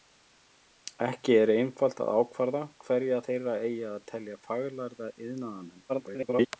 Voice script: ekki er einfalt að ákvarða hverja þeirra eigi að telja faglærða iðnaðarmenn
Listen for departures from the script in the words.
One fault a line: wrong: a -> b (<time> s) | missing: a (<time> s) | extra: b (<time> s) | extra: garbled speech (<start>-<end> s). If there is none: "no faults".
extra: garbled speech (5.9-6.5 s)